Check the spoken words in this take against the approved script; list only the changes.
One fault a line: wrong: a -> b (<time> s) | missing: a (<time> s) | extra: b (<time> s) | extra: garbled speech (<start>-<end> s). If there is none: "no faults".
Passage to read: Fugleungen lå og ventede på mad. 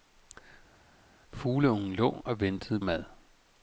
missing: på (2.8 s)